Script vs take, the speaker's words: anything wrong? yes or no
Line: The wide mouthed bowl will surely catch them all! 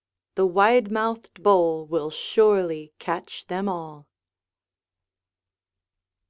no